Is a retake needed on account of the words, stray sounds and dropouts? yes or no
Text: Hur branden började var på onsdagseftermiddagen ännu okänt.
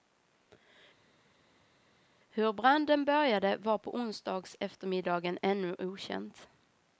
no